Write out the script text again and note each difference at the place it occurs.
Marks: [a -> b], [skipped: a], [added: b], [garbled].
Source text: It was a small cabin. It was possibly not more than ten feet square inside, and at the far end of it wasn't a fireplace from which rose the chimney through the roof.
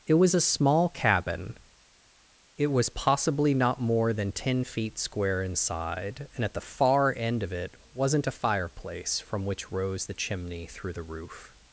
It was a small cabin. It was possibly not more than ten feet square inside, and at the far end of it wasn't a fireplace from which rose the chimney through the roof.